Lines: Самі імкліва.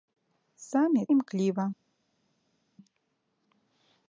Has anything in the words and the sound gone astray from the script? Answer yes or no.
no